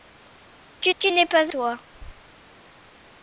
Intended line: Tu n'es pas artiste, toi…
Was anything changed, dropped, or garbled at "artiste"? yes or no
yes